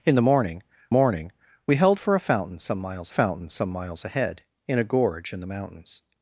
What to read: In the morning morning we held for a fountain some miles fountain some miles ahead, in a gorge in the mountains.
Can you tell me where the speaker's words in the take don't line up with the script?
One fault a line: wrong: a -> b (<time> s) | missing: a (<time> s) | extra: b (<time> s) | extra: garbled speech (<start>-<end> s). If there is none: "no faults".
no faults